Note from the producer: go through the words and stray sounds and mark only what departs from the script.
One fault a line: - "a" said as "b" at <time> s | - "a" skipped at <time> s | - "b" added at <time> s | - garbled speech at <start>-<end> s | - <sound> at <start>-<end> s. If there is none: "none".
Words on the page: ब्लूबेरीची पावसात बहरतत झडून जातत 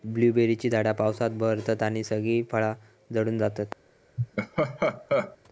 - "झाडा" added at 0.7 s
- "आणि सगळी फळा" added at 1.8 s
- laugh at 4.2-5.4 s